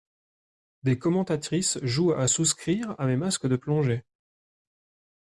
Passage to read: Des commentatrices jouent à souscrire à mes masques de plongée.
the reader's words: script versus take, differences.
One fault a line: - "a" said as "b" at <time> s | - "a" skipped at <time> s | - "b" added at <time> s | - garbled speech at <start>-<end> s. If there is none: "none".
none